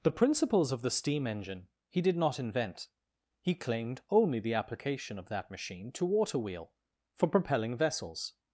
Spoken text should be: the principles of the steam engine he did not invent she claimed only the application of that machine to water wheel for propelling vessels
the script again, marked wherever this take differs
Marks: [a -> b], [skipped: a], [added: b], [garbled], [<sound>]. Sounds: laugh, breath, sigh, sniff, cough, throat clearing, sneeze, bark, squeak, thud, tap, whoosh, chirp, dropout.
the principles of the steam engine he did not invent [she -> he] claimed only the application of that machine to water wheel for propelling vessels